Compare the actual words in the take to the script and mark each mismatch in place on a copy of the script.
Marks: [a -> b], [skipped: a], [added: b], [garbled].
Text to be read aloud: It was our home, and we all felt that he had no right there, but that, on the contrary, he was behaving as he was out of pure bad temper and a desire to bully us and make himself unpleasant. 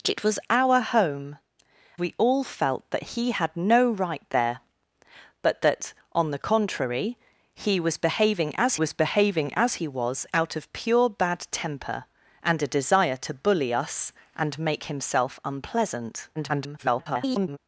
It was our home, [skipped: and] we all felt that he had no right there, but that, on the contrary, he was behaving as [added: was behaving as] he was out of pure bad temper and a desire to bully us and make himself unpleasant. [garbled]